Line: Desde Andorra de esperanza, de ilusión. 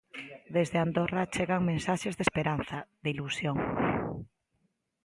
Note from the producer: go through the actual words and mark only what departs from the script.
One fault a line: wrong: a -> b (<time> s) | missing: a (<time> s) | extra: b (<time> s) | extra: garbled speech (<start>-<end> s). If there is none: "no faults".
extra: chegan mensaxes (1.3 s)